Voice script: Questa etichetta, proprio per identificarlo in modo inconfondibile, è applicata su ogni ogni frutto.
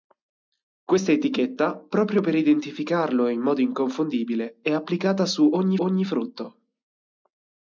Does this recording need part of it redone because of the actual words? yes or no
no